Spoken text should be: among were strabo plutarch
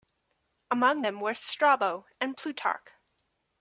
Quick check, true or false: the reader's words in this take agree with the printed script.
false